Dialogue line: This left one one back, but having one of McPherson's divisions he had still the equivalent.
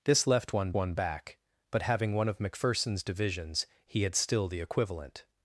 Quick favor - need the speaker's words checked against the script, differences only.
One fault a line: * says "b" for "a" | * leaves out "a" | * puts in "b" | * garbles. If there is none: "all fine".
all fine